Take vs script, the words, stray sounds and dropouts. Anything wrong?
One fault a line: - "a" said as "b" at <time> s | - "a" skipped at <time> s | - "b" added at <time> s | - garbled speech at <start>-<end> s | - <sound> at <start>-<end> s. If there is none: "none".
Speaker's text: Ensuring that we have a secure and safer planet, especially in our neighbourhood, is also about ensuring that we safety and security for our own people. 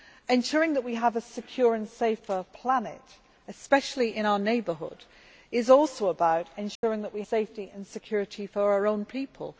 - dropout at 6.8-6.8 s